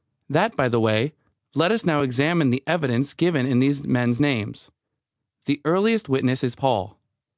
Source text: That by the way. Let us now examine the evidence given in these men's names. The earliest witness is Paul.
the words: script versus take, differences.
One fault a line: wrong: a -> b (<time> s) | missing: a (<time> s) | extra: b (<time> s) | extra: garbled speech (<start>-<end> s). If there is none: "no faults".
no faults